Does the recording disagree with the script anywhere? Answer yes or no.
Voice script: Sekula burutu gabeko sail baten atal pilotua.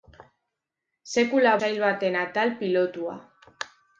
yes